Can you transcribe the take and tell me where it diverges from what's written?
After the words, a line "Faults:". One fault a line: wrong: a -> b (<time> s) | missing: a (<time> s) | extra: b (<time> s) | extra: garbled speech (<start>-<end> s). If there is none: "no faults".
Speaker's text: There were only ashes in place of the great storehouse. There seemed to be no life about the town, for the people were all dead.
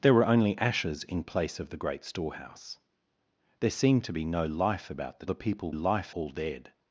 There were only ashes in place of the great storehouse. There seemed to be no life about the the people life all dead.
Faults:
missing: town for (5.3 s)
wrong: were -> life (5.7 s)